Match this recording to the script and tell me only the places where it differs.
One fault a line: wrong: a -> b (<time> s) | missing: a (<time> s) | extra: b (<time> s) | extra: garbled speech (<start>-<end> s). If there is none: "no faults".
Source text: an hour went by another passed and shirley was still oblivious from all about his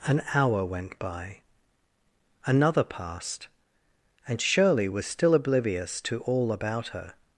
wrong: from -> to (6.0 s)
wrong: his -> her (6.9 s)